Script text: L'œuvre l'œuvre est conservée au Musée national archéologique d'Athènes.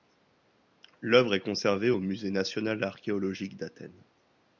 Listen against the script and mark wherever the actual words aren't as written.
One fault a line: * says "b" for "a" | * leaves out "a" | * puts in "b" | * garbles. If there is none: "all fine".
* leaves out "l'œuvre"